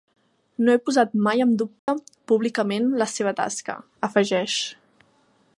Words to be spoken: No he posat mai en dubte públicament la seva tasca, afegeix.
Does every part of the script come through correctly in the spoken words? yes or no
yes